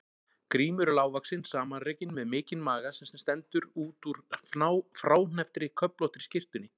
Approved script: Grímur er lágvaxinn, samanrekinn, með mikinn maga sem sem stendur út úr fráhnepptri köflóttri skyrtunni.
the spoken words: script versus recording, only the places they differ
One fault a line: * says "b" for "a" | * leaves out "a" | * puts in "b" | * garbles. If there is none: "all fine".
all fine